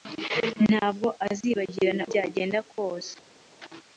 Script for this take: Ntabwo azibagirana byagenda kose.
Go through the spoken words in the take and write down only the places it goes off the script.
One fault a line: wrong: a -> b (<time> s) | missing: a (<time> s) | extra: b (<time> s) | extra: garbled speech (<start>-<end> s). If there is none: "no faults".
no faults